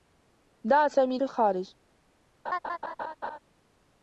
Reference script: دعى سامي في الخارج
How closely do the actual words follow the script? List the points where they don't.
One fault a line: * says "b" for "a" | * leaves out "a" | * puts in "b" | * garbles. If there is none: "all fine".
all fine